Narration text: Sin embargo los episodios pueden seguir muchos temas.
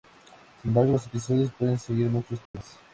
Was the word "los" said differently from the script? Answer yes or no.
no